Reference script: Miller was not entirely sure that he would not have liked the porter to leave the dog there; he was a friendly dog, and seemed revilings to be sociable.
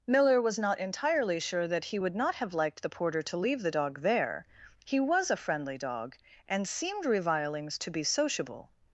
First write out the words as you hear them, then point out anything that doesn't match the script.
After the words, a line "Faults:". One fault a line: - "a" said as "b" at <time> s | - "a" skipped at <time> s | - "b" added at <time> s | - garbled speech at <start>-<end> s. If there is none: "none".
Miller was not entirely sure that he would not have liked the porter to leave the dog there; he was a friendly dog, and seemed revilings to be sociable.
Faults:
none